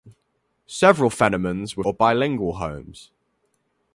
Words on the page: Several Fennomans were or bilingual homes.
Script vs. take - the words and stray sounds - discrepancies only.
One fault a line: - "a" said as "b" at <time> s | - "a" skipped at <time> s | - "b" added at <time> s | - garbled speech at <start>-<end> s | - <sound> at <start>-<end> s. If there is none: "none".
none